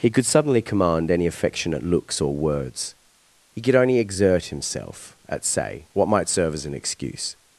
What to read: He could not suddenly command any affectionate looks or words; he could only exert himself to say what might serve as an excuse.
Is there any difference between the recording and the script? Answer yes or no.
yes